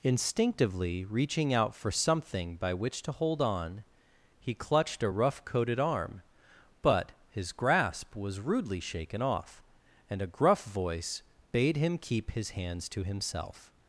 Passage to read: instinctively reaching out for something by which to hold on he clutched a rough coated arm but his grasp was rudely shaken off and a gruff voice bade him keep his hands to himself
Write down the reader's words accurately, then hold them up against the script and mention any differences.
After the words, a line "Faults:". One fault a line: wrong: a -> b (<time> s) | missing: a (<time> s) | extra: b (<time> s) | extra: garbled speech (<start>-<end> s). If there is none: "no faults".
instinctively reaching out for something by which to hold on he clutched a rough coated arm but his grasp was rudely shaken off and a gruff voice bade him keep his hands to himself
Faults:
no faults